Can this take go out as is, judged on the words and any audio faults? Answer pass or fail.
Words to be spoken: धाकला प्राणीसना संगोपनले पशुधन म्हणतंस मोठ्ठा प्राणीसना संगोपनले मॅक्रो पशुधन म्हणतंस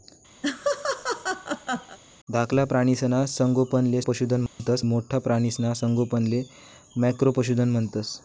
fail